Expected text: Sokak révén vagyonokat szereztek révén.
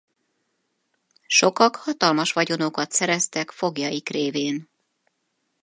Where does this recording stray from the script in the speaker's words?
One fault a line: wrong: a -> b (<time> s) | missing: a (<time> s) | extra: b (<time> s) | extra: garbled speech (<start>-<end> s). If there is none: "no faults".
wrong: révén -> hatalmas (1.8 s)
extra: foglyaik (3.5 s)